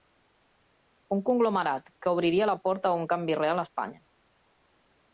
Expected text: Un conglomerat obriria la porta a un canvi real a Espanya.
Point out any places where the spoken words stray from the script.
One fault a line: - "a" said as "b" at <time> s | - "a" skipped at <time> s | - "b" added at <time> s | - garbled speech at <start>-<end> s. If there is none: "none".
- "que" added at 2.0 s